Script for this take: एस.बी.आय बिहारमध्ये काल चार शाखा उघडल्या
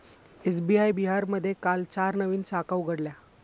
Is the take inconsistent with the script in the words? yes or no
yes